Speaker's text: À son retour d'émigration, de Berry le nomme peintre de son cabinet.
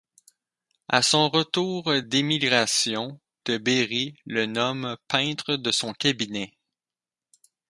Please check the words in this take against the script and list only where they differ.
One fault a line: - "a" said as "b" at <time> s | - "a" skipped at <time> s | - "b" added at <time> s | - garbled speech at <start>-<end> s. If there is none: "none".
none